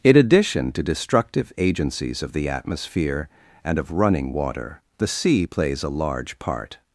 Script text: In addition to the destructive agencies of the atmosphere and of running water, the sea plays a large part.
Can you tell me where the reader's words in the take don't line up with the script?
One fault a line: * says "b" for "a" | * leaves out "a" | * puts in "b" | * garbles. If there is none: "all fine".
* leaves out "the"